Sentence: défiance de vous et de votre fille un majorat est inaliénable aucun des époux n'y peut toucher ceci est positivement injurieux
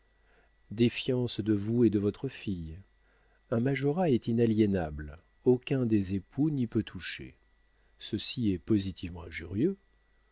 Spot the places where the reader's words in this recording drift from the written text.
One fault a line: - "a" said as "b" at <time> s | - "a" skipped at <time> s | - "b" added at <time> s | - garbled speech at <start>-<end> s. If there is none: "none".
none